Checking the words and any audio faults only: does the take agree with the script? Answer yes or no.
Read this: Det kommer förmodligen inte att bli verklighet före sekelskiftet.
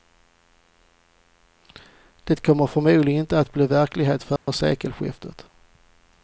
no